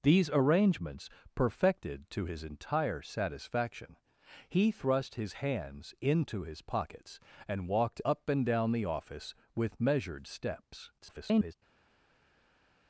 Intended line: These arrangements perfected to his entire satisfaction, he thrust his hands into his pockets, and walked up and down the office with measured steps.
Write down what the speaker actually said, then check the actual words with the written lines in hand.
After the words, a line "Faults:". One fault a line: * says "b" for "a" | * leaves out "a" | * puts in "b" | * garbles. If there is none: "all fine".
These arrangements perfected to his entire satisfaction, he thrust his hands into his pockets, and walked up and down the office with measured steps. [garbled]
Faults:
* garbles